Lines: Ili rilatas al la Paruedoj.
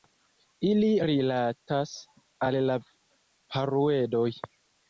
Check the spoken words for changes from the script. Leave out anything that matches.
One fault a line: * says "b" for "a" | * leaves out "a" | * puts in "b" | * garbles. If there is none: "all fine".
all fine